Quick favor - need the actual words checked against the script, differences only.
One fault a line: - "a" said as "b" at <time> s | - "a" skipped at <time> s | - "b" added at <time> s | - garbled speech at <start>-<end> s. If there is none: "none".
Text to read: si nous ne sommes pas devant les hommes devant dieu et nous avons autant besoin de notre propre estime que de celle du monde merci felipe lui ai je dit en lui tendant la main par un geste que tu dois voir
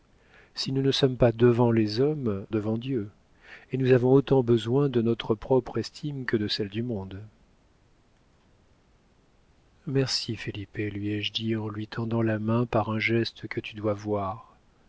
none